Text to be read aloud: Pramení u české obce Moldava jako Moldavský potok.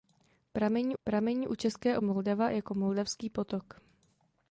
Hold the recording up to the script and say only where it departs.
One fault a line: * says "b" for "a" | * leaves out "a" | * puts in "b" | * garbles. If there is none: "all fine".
* puts in "pramení"
* leaves out "obce"